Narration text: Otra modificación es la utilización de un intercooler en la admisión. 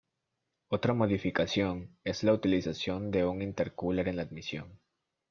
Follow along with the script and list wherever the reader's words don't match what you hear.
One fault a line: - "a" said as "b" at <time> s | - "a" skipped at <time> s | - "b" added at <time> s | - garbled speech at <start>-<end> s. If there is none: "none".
none